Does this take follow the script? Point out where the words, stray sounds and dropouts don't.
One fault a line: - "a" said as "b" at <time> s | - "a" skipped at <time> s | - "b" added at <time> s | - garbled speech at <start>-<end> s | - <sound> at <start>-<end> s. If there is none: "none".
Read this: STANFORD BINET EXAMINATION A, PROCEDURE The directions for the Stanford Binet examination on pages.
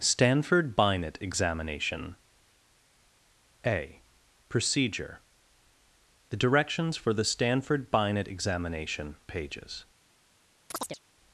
- "on" skipped at 9.2 s
- chirp at 10.7-11.0 s